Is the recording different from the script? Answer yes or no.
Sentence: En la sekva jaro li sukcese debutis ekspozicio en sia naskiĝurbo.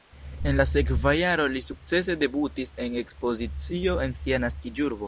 yes